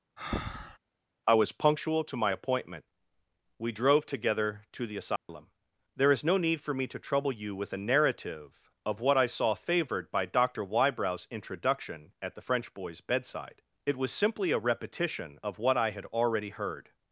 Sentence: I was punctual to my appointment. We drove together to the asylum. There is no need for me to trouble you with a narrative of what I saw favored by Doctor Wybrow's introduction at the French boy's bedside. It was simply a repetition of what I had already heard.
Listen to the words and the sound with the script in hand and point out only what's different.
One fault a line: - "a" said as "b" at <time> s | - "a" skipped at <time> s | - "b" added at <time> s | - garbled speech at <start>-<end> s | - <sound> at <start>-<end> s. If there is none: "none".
- breath at 0.2-0.8 s
- dropout at 5.2-5.3 s